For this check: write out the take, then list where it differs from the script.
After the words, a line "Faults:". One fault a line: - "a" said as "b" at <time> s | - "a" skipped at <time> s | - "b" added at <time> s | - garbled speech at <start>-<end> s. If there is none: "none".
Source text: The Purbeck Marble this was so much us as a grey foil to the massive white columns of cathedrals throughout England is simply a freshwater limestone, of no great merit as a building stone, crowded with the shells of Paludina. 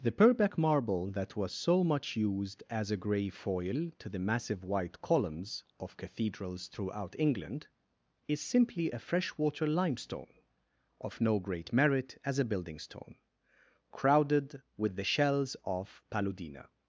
The Purbeck Marble that was so much used as a grey foil to the massive white columns of cathedrals throughout England is simply a freshwater limestone, of no great merit as a building stone, crowded with the shells of Paludina.
Faults:
- "this" said as "that" at 1.1 s
- "us" said as "used" at 2.1 s